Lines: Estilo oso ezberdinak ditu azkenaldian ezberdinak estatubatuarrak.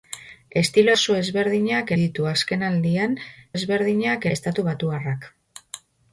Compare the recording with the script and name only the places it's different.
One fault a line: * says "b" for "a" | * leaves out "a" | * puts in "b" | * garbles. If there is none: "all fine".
all fine